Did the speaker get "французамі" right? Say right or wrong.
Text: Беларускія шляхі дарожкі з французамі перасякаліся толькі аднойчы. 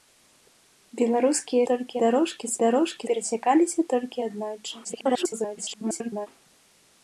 wrong